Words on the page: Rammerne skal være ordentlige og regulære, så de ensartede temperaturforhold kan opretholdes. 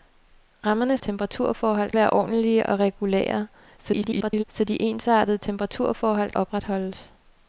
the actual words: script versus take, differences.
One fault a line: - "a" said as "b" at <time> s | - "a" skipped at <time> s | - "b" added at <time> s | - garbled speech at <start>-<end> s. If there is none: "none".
- "skal" said as "temperaturforhold" at 1.0 s
- garbled speech at 3.8-4.4 s
- "kan" skipped at 6.3 s